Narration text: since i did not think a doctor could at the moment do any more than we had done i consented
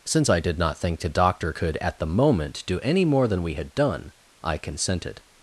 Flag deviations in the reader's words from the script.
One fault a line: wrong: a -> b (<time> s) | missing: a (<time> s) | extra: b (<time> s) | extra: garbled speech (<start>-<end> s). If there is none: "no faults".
wrong: a -> the (1.0 s)